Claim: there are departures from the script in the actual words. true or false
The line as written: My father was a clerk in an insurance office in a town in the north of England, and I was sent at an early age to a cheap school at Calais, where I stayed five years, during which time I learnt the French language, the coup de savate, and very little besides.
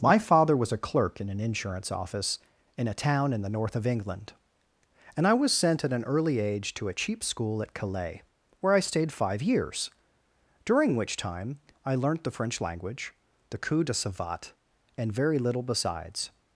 false